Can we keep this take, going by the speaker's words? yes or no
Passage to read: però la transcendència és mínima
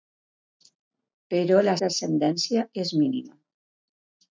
yes